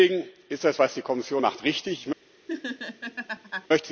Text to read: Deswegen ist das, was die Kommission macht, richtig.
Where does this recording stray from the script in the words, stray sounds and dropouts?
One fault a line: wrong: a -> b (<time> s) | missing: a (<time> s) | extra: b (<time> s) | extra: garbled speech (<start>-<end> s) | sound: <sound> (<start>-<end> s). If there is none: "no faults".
sound: laugh (2.5-3.7 s)